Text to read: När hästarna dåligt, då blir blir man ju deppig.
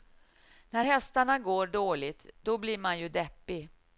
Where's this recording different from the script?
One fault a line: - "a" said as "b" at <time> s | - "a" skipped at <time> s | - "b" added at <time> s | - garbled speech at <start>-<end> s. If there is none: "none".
- "går" added at 1.4 s
- "blir" skipped at 2.8 s